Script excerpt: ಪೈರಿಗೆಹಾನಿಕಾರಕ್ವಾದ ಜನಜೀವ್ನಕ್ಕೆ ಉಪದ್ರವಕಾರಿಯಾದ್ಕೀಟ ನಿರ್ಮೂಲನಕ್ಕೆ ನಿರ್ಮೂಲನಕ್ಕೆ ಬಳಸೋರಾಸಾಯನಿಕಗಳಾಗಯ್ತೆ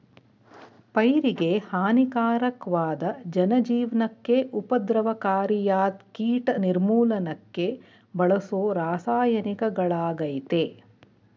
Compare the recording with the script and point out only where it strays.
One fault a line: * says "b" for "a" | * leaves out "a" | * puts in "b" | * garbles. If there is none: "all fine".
* leaves out "ನಿರ್ಮೂಲನಕ್ಕೆ"